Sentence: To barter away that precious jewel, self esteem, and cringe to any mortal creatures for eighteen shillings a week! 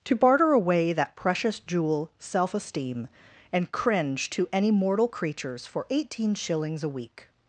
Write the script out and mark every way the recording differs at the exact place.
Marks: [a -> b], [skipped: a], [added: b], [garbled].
To barter away that precious jewel, self esteem, and cringe to any mortal creatures for eighteen shillings a week!